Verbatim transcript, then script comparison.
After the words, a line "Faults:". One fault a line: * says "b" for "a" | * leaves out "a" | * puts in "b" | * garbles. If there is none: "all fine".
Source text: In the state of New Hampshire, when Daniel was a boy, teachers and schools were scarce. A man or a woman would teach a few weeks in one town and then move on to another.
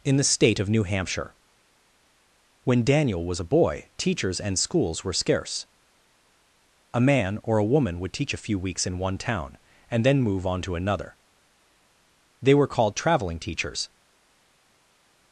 In the state of New Hampshire, when Daniel was a boy, teachers and schools were scarce. A man or a woman would teach a few weeks in one town and then move on to another. They were called traveling teachers
Faults:
* puts in "They were called traveling teachers"